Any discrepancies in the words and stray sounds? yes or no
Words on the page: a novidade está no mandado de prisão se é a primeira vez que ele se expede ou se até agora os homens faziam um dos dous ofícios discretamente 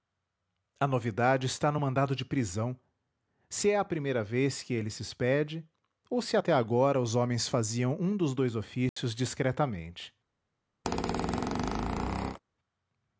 yes